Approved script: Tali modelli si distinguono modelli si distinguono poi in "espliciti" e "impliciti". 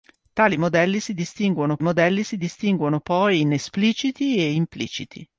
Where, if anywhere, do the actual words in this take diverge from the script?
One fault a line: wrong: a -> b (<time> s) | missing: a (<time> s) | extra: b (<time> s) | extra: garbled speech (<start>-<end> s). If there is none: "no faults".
no faults